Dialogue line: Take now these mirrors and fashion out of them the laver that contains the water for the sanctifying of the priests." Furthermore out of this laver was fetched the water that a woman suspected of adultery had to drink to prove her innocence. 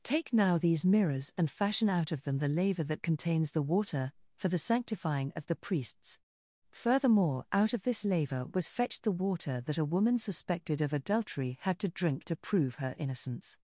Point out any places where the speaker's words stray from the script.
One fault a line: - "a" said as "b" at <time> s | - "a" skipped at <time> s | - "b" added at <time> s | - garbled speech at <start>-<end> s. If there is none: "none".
none